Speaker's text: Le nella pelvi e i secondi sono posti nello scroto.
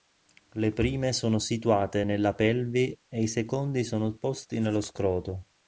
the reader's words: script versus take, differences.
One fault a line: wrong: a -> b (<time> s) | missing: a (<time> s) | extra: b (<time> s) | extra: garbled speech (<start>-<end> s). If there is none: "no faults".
extra: prime sono situate (0.7 s)